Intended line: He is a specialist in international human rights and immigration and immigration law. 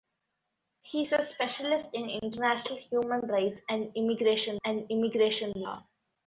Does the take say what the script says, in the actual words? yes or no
yes